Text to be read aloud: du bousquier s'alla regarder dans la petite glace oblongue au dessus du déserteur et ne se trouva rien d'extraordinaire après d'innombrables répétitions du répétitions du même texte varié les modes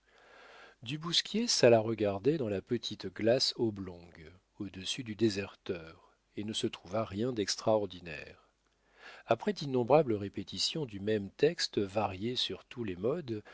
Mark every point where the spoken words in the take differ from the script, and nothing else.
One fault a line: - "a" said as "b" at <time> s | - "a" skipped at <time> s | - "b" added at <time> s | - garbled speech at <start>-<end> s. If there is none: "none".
- "répétitions du" skipped at 11.0 s
- "sur tous" added at 12.4 s